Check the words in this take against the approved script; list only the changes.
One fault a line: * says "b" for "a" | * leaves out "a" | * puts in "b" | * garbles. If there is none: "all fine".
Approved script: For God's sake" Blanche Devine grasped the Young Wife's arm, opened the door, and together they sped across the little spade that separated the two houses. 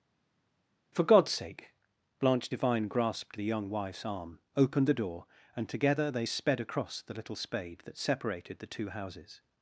all fine